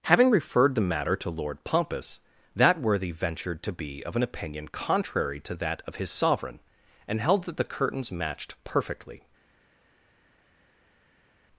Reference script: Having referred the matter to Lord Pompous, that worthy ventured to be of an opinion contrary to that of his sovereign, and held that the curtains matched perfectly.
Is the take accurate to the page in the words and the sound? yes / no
yes